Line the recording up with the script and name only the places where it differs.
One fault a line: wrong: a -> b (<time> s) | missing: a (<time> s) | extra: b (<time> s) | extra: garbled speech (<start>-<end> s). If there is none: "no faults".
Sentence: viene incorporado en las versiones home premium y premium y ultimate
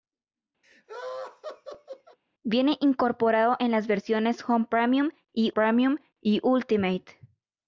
no faults